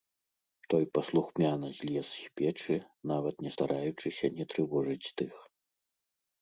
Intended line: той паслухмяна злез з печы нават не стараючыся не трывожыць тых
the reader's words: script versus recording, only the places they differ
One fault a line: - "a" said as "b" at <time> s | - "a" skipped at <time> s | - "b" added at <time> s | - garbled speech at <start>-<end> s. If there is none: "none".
none